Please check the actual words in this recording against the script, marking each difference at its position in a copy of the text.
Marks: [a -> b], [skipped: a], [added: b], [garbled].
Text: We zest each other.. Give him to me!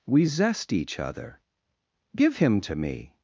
We zest each other.. Give him to me!